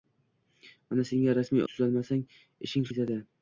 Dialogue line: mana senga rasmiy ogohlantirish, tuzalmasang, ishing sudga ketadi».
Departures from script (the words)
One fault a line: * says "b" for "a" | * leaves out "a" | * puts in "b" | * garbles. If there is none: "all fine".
* leaves out "ogohlantirish"
* leaves out "sudga"